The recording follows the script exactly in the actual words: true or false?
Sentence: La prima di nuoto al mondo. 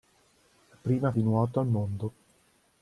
true